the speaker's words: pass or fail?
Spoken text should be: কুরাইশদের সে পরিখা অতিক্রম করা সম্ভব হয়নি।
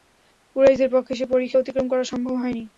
fail